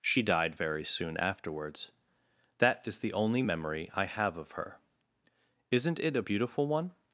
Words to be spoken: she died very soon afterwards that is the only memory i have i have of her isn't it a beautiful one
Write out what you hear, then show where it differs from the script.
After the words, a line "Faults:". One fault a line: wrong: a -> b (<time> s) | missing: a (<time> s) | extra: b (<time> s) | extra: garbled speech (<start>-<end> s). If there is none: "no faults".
she died very soon afterwards that is the only memory i have of her isn't it a beautiful one
Faults:
missing: i have (4.4 s)